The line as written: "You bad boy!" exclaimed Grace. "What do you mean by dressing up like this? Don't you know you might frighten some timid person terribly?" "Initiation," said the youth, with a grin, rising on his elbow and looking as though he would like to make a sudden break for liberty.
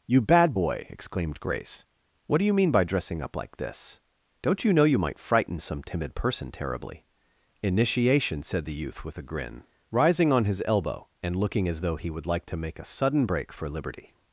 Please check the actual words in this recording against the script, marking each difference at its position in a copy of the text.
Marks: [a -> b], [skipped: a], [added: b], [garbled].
"You bad boy!" exclaimed Grace. "What do you mean by dressing up like this? Don't you know you might frighten some timid person terribly?" "Initiation," said the youth, with a grin, rising on his elbow and looking as though he would like to make a sudden break for liberty.